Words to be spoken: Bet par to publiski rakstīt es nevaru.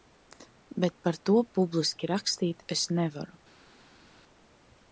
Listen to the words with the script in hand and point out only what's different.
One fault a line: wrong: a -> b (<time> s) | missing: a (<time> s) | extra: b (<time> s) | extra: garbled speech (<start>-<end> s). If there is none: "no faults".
no faults